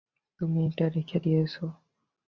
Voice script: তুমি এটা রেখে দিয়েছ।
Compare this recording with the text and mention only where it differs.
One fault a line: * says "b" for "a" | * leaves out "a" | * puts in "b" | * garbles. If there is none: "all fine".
all fine